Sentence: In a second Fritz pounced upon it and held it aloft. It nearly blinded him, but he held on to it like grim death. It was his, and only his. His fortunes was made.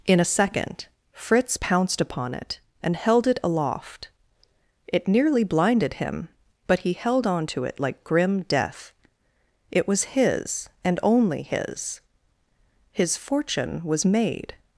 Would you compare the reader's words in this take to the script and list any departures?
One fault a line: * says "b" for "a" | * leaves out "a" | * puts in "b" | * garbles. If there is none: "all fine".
* says "fortune" for "fortunes"